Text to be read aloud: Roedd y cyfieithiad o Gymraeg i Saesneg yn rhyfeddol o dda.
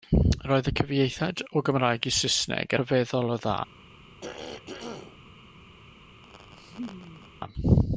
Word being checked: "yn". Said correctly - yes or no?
no